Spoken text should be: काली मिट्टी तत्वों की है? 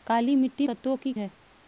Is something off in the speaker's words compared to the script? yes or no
no